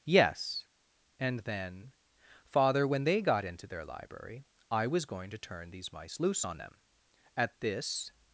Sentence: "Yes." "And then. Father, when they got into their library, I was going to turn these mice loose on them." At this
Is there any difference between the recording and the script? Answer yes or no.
no